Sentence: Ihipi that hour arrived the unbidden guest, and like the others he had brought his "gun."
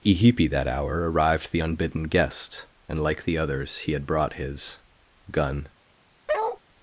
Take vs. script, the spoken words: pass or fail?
pass